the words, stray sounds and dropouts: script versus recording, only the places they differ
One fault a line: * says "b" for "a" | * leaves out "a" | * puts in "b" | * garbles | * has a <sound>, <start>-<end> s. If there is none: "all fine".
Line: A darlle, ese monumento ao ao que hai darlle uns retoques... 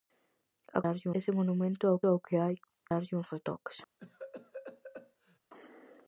* has a cough, 4.0-5.4 s